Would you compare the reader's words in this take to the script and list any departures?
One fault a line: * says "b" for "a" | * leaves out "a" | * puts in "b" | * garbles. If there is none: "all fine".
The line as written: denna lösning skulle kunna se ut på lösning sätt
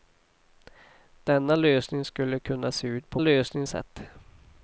all fine